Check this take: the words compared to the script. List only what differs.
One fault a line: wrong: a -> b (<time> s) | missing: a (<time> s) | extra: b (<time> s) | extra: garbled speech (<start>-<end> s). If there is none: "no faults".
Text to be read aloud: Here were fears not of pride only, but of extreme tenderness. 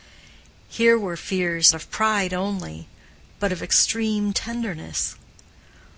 missing: not (1.8 s)